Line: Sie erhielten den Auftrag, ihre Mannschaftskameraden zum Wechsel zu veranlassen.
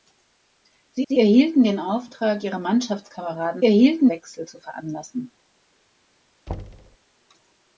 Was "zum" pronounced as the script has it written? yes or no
no